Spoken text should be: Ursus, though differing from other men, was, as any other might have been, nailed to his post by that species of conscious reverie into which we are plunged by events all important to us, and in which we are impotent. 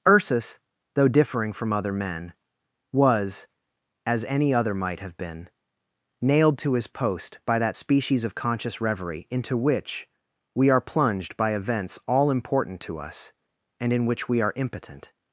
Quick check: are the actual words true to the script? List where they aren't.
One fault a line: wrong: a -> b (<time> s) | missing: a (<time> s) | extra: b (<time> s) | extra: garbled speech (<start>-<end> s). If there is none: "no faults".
no faults